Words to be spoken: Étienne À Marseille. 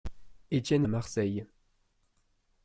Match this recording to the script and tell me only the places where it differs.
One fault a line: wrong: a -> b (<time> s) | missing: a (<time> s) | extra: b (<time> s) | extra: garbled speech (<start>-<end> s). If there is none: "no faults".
no faults